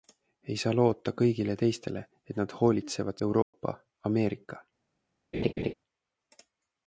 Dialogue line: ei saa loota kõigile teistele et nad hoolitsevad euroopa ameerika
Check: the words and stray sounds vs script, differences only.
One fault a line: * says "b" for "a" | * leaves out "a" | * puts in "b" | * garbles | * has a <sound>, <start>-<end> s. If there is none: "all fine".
* has a dropout, 3.4-3.5 s
* has a laugh, 5.3-5.7 s